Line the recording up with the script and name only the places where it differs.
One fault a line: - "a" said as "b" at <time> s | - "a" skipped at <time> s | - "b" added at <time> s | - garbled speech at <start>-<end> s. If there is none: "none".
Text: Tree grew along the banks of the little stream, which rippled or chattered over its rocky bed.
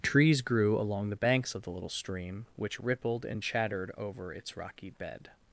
- "Tree" said as "Trees" at 0.0 s
- "or" said as "and" at 3.2 s